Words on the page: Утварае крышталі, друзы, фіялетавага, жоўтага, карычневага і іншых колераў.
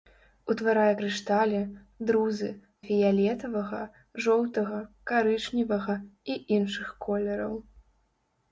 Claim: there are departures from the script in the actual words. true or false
false